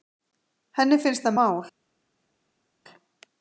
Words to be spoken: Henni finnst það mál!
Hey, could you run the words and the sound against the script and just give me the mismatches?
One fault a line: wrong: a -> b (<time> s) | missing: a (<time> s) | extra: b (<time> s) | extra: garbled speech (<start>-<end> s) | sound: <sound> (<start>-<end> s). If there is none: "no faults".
no faults